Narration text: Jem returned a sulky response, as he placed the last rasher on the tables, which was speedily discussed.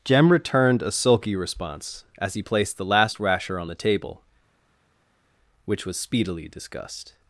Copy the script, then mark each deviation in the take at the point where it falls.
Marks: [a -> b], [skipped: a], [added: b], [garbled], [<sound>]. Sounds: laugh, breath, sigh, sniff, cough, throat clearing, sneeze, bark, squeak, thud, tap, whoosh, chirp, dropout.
Jem returned a sulky response, as he placed the last rasher on the [tables, -> table] which was speedily discussed.